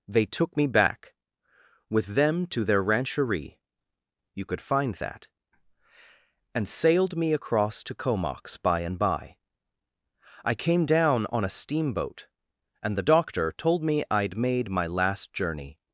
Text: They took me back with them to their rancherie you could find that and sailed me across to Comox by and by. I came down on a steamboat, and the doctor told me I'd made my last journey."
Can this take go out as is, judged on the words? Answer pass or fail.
pass